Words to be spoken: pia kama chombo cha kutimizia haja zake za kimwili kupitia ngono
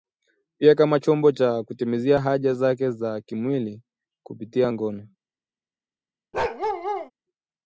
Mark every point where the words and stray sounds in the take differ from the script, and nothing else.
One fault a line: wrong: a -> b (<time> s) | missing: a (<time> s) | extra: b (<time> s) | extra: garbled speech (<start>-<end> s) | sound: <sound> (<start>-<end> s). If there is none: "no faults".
sound: bark (6.3-7.1 s)